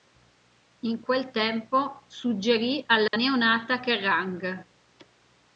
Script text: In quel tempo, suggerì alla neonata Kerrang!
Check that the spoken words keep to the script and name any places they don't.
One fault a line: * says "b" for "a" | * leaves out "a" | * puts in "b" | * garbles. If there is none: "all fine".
all fine